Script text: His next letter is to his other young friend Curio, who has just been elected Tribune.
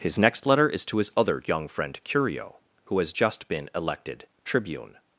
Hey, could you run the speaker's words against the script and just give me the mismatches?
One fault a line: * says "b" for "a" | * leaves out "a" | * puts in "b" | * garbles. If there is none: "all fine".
all fine